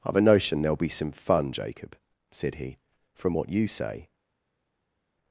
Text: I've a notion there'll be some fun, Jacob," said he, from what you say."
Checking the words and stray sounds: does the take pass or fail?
pass